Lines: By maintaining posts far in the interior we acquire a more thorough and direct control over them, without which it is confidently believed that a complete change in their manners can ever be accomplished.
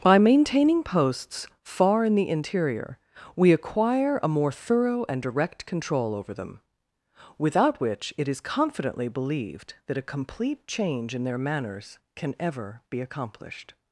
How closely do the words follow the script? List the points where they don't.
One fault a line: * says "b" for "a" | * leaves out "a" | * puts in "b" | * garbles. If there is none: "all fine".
all fine